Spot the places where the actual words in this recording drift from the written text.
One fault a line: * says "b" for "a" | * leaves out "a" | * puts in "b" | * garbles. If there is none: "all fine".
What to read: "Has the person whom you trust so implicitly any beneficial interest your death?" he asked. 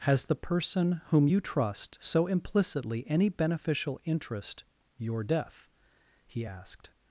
all fine